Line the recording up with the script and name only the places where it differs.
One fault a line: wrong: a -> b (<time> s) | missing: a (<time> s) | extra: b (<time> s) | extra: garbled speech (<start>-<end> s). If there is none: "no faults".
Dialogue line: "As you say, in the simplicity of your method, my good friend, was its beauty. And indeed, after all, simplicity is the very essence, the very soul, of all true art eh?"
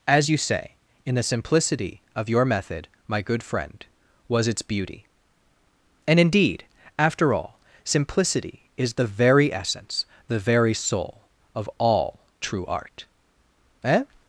no faults